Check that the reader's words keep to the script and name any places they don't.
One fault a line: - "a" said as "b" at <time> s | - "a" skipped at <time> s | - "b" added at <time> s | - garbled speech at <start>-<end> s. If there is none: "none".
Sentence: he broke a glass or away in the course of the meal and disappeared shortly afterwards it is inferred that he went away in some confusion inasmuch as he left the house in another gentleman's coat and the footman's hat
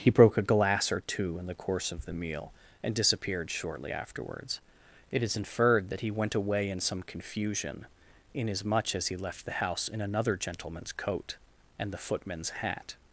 - "away" said as "two" at 1.1 s